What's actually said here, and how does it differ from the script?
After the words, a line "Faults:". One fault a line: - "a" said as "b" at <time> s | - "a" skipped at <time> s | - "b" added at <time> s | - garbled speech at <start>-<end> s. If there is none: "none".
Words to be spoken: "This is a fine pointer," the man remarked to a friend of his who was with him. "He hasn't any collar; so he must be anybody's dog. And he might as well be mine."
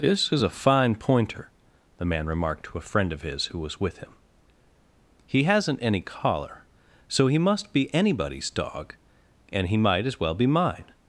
"This is a fine pointer," the man remarked to a friend of his who was with him. "He hasn't any collar; so he must be anybody's dog. And he might as well be mine."
Faults:
none